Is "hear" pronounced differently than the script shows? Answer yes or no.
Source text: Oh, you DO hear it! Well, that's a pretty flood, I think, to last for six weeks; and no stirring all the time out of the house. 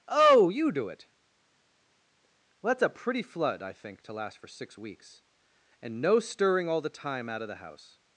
yes